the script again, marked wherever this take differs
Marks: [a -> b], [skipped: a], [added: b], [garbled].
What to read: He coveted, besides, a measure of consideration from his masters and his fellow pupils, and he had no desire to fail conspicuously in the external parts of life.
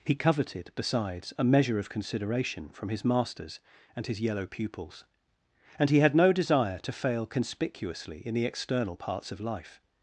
He coveted, besides, a measure of consideration from his masters and his [fellow -> yellow] pupils, and he had no desire to fail conspicuously in the external parts of life.